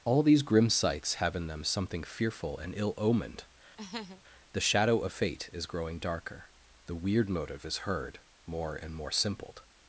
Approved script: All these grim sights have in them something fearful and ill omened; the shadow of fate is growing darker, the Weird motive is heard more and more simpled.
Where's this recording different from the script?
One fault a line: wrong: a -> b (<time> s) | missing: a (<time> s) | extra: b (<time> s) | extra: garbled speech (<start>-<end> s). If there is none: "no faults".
no faults